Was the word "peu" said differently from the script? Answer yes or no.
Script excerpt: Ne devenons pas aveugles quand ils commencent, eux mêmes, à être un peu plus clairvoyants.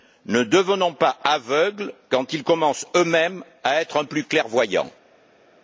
yes